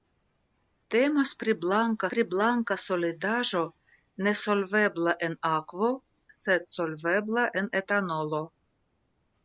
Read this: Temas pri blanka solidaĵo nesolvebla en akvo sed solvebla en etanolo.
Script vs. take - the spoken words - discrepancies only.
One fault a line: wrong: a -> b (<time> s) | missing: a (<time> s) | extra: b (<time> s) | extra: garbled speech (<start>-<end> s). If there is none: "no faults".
extra: pri blanka (2.1 s)